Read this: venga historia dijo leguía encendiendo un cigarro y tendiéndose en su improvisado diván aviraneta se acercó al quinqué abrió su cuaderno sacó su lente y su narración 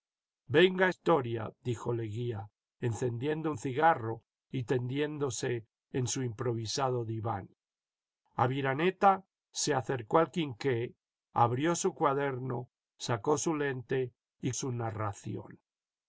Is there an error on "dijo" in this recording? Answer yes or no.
no